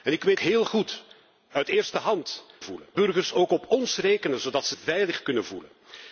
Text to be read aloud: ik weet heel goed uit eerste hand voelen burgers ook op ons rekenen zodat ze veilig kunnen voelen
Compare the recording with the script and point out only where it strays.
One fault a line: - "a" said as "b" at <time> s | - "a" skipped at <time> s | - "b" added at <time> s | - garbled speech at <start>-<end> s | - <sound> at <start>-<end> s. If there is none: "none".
none